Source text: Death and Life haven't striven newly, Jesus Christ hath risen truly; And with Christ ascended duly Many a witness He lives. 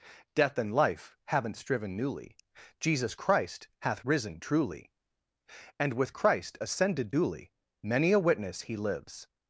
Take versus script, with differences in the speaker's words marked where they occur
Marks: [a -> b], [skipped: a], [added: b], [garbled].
Death and Life haven't striven newly, Jesus Christ hath risen truly; And with Christ ascended duly Many a witness He lives.